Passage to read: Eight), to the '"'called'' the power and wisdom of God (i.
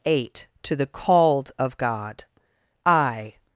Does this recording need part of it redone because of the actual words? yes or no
yes